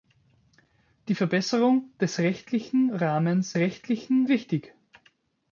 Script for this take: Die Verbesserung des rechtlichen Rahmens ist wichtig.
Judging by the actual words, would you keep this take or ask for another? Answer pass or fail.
fail